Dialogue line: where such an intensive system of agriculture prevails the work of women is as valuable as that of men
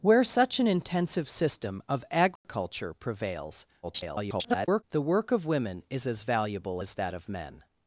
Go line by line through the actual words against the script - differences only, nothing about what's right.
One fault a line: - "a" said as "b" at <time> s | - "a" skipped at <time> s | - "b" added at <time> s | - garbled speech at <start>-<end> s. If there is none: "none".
- garbled speech at 3.8-4.8 s